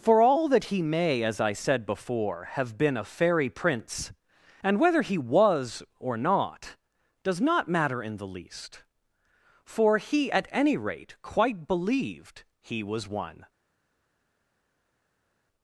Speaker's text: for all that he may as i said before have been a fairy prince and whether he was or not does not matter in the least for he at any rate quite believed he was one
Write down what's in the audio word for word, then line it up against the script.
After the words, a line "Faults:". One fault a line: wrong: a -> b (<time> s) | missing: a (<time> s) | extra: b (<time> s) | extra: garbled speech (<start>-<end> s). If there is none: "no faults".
for all that he may as i said before have been a fairy prince and whether he was or not does not matter in the least for he at any rate quite believed he was one
Faults:
no faults